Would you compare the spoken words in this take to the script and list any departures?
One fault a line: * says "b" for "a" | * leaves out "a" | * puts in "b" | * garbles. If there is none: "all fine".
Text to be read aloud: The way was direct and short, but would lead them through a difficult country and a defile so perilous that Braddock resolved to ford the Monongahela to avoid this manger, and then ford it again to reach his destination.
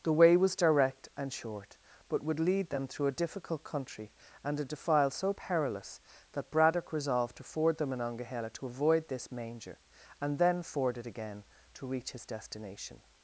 all fine